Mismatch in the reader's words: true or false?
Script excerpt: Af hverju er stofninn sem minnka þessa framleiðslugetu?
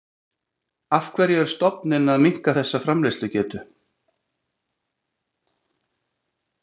true